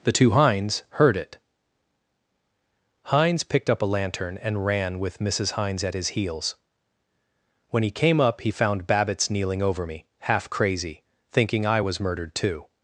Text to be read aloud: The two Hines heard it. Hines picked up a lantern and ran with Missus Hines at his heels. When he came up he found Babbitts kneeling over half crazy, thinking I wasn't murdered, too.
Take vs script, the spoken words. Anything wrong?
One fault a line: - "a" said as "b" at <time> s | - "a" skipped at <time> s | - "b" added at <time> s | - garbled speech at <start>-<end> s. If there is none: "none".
- "me" added at 9.8 s
- "wasn't" said as "was" at 11.8 s